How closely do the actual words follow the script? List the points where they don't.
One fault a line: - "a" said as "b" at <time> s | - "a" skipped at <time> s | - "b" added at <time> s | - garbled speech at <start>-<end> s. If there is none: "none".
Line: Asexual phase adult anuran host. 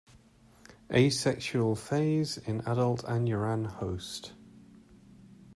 - "in" added at 2.4 s